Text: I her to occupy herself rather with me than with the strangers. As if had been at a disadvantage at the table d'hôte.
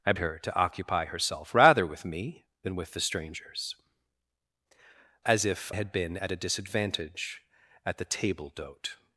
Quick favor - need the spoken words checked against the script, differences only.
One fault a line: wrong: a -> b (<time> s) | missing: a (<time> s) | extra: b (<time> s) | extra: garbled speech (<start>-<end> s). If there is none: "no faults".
no faults